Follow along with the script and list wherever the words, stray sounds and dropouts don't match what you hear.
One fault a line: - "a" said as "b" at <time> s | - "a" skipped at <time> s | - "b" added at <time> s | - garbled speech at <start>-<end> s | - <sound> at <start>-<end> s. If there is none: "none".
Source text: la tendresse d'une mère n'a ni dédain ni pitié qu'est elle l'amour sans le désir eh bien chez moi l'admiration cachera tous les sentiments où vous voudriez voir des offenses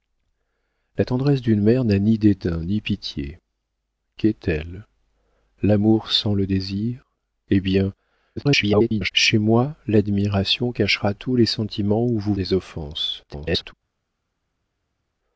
- garbled speech at 8.4-9.1 s
- "voudriez voir" skipped at 12.3 s
- garbled speech at 13.3-13.7 s